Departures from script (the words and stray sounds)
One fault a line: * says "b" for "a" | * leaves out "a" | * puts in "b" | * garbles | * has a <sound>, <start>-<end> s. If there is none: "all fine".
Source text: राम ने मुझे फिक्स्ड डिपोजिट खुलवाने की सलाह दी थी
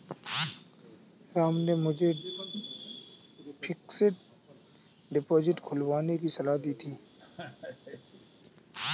* has a laugh, 7.2-8.3 s